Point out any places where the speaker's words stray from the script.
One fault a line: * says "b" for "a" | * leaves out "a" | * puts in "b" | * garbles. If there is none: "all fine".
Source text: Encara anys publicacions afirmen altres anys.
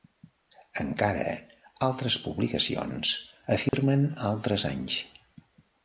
* says "altres" for "anys"